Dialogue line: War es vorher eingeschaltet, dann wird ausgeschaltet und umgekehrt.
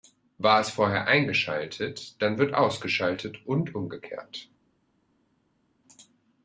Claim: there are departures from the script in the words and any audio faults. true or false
false